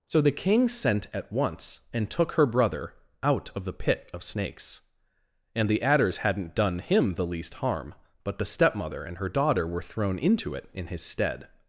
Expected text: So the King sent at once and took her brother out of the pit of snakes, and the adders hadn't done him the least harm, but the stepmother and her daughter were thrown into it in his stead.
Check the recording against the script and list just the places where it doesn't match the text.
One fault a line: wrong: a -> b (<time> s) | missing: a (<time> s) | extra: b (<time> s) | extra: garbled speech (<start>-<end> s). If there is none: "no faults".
no faults